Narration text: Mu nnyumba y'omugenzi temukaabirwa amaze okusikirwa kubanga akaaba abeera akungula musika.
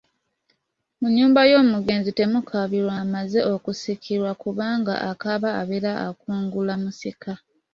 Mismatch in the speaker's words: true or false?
false